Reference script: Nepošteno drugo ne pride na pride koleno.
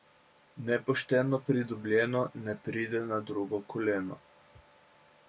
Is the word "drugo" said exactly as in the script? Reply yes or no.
no